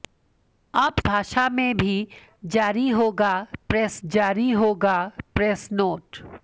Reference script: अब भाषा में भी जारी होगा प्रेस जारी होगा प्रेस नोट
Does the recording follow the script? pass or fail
pass